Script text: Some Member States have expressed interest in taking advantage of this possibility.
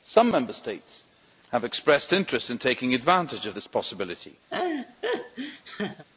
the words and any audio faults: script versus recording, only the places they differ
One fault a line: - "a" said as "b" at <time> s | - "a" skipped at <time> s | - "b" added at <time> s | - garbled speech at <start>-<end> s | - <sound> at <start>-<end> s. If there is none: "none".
- laugh at 4.5-6.1 s